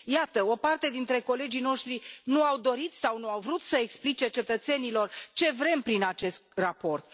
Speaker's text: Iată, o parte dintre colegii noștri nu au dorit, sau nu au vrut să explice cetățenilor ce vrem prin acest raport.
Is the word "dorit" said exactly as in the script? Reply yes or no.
yes